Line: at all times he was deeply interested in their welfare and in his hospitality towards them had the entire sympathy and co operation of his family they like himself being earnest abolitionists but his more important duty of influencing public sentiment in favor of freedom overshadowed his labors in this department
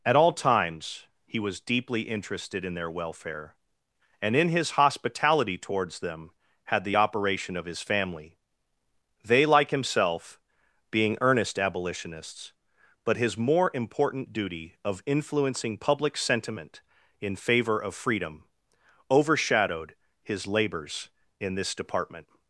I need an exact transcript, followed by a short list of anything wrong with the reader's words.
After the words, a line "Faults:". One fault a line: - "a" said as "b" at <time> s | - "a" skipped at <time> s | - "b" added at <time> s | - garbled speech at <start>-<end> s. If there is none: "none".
at all times he was deeply interested in their welfare and in his hospitality towards them had the operation of his family they like himself being earnest abolitionists but his more important duty of influencing public sentiment in favor of freedom overshadowed his labors in this department
Faults:
- "entire sympathy and co" skipped at 7.0 s